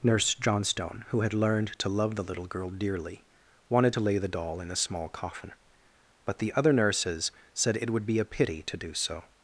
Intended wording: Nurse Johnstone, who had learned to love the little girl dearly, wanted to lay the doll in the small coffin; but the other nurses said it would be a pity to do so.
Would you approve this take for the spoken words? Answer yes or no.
no